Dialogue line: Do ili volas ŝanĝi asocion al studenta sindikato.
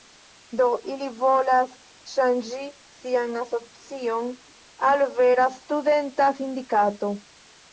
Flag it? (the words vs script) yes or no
yes